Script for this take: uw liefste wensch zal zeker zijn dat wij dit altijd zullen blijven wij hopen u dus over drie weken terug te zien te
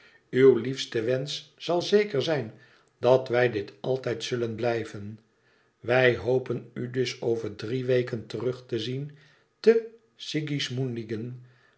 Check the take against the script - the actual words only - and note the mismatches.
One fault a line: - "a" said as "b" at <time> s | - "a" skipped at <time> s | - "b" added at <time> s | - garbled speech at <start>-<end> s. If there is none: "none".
none